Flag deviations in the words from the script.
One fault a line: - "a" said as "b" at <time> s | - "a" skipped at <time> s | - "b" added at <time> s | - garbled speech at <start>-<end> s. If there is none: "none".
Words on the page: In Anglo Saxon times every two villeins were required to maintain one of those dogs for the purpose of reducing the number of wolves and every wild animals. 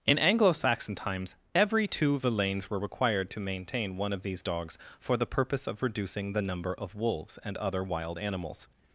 - "those" said as "these" at 4.2 s
- "every" said as "other" at 7.6 s